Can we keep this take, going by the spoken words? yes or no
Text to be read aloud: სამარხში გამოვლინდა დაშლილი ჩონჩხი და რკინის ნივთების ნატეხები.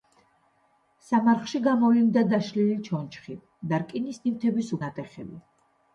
yes